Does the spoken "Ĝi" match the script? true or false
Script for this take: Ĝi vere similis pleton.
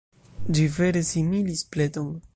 true